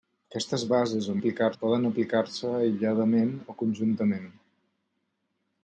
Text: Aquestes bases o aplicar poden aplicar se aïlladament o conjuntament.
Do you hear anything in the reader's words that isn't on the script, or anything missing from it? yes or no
no